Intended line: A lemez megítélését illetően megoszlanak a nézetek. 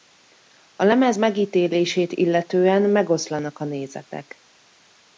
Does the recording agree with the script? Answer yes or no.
yes